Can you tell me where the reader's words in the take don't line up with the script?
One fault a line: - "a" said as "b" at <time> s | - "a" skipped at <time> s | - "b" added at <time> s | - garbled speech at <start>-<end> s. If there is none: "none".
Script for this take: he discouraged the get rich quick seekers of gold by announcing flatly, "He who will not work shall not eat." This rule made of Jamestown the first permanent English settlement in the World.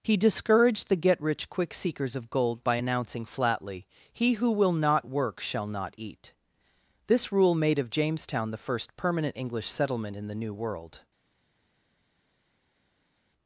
- "New" added at 10.3 s